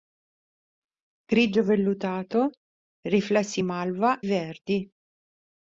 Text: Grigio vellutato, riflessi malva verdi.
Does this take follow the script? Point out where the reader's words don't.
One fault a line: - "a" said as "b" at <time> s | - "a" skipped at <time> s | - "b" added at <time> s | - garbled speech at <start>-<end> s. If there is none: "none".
none